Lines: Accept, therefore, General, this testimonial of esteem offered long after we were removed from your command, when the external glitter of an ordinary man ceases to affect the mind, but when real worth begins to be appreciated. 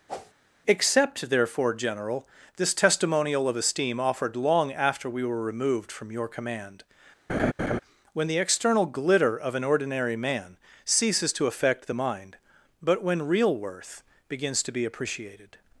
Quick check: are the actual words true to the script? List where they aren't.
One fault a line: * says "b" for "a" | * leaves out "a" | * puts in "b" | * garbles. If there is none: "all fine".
all fine